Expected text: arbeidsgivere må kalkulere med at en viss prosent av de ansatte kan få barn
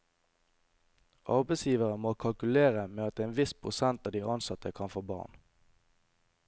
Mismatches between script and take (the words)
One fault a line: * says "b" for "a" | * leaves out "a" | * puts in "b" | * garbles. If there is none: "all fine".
all fine